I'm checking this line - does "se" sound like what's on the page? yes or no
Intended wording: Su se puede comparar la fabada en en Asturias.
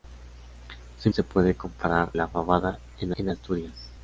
yes